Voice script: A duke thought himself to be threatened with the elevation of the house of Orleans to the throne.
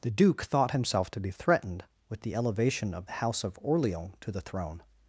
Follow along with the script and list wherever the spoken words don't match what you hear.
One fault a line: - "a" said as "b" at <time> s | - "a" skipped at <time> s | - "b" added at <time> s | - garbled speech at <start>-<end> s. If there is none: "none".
- "A" said as "The" at 0.0 s